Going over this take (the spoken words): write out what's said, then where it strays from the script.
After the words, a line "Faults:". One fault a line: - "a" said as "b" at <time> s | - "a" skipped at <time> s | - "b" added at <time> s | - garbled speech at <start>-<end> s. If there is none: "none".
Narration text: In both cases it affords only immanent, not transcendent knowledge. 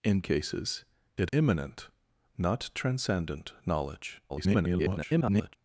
In cases it immanent, not transcendent knowledge. [garbled]
Faults:
- "both" skipped at 0.2 s
- "affords only" skipped at 1.3 s
- garbled speech at 4.3-5.6 s